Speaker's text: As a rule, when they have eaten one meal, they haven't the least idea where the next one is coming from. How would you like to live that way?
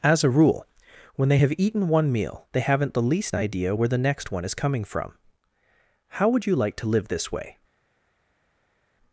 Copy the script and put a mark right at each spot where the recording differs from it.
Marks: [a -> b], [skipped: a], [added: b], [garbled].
As a rule, when they have eaten one meal, they haven't the least idea where the next one is coming from. How would you like to live [that -> this] way?